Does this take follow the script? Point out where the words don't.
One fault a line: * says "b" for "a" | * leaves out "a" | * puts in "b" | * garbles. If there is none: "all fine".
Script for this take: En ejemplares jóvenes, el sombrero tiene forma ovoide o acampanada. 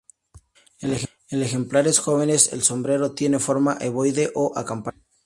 all fine